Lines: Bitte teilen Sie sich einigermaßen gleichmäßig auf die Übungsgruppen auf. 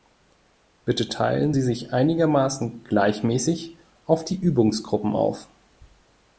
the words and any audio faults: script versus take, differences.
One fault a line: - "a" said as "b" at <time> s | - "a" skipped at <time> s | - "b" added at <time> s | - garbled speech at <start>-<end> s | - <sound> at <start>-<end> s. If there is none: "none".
none